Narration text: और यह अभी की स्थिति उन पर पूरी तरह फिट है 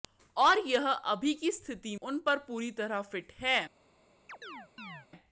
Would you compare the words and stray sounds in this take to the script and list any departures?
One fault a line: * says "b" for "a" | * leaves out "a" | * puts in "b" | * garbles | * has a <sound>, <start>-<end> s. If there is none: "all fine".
* has a chirp, 4.3-5.1 s